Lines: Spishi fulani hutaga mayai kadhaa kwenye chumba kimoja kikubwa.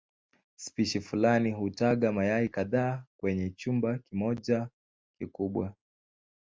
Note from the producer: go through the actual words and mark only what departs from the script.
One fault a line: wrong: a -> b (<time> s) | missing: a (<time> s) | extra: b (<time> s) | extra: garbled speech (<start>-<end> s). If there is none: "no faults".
no faults